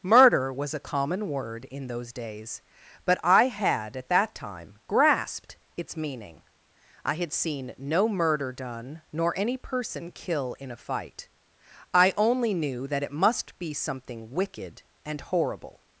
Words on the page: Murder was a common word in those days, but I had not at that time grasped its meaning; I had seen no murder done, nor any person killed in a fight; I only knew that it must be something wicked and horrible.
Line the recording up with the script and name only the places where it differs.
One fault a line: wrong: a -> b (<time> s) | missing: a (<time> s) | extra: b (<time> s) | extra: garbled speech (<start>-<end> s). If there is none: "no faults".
missing: not (4.0 s)
wrong: killed -> kill (10.1 s)